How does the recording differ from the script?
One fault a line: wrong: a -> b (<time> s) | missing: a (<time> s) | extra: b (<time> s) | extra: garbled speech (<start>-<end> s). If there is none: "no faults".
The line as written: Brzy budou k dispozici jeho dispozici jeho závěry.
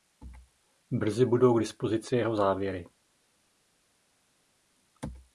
missing: dispozici jeho (2.4 s)